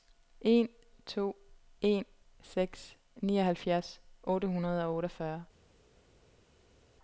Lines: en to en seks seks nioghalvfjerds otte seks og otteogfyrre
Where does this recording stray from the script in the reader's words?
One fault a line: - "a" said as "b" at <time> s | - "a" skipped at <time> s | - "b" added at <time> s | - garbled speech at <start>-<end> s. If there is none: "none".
- "seks" skipped at 3.0 s
- "seks" said as "hundrede" at 4.5 s